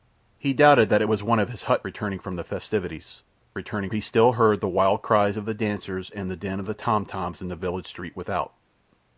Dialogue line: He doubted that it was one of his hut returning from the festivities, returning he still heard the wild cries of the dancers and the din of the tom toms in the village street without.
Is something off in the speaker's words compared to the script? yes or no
no